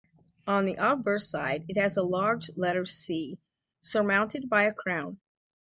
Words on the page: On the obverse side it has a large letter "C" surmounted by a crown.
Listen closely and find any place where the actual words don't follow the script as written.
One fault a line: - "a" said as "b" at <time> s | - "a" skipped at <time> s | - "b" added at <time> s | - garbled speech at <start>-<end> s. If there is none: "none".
none